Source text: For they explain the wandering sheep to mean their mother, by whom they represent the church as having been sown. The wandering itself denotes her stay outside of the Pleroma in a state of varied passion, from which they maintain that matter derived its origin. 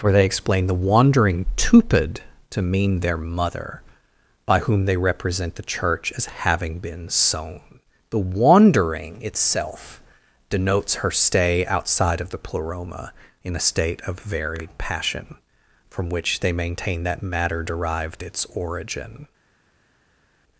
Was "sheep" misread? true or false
true